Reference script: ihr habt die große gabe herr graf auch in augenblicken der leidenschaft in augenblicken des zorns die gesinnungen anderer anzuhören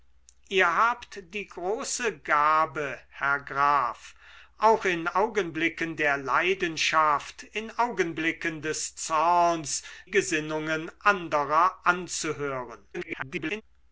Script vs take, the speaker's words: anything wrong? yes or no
yes